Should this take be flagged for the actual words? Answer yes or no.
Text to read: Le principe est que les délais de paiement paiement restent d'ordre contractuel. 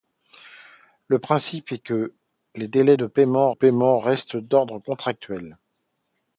no